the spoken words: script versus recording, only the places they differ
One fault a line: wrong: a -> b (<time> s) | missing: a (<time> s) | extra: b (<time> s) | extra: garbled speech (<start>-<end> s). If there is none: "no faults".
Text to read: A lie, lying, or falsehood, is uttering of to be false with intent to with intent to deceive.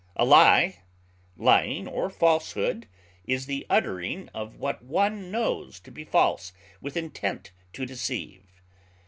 extra: the (3.5 s)
extra: what one knows (4.6 s)
missing: with intent to (7.9 s)